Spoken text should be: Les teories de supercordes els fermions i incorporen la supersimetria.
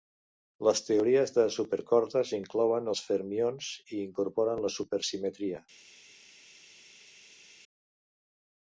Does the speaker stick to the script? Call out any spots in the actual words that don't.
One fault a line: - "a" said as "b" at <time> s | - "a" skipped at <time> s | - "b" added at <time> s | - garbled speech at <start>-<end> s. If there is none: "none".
- "inclouen" added at 2.4 s